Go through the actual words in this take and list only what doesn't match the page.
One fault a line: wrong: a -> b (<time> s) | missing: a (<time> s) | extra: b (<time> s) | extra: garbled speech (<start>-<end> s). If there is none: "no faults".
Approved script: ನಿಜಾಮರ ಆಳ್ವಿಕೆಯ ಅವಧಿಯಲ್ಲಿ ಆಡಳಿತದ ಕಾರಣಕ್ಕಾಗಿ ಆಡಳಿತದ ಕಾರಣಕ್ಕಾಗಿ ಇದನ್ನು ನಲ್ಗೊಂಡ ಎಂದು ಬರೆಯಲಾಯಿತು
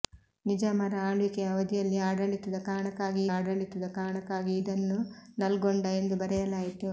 no faults